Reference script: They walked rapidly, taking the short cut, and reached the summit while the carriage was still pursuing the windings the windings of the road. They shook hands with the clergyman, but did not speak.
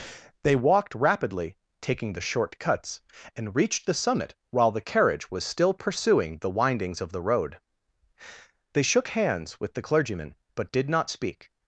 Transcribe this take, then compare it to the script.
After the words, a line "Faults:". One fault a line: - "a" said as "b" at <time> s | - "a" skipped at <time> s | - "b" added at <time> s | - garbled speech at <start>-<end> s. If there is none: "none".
They walked rapidly, taking the short cuts, and reached the summit while the carriage was still pursuing the windings of the road. They shook hands with the clergyman, but did not speak.
Faults:
- "cut" said as "cuts" at 2.6 s
- "the windings" skipped at 7.0 s